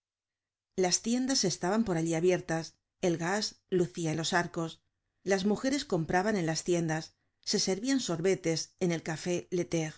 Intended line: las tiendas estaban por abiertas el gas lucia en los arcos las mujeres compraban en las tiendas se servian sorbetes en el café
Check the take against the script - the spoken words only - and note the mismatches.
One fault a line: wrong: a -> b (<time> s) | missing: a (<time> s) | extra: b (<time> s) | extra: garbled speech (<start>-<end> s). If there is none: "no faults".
extra: allí (2.0 s)